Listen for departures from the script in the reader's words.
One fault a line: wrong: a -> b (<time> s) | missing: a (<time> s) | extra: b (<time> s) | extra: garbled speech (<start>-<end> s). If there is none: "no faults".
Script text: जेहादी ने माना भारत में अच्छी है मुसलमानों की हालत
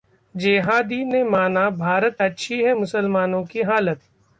missing: में (2.2 s)